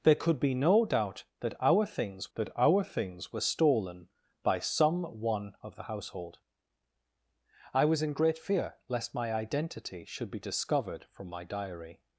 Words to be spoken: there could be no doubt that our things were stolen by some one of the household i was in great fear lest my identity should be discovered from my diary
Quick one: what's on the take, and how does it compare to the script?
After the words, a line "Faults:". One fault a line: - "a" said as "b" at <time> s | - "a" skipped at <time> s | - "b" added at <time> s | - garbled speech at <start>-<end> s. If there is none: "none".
there could be no doubt that our things that our things were stolen by some one of the household i was in great fear lest my identity should be discovered from my diary
Faults:
- "that our things" added at 2.4 s